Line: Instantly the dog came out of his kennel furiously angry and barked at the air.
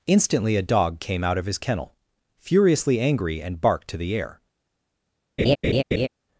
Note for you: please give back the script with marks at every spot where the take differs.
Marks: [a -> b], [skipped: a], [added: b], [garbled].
Instantly [the -> a] dog came out of his kennel furiously angry and barked [at -> to] the air.